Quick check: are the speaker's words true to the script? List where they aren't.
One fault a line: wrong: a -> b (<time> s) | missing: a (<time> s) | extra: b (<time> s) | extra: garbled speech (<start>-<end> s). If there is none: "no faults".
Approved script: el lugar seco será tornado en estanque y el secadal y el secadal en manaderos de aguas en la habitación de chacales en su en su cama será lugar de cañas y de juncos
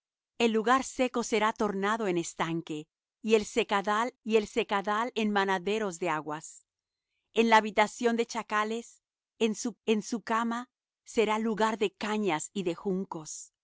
no faults